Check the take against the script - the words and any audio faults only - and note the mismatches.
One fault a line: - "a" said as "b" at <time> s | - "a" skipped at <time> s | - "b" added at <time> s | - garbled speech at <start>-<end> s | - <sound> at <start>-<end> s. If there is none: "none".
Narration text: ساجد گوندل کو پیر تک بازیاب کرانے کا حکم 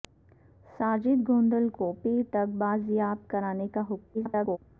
- garbled speech at 4.1-4.6 s